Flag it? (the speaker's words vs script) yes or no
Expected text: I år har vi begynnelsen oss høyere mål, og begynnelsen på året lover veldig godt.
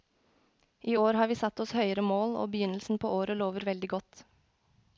yes